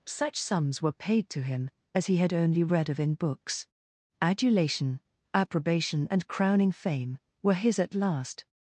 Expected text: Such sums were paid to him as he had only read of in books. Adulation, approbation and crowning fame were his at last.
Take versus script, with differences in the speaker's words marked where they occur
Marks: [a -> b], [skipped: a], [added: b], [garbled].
Such sums were paid to him as he had only read of in books. Adulation, approbation and crowning fame were his at last.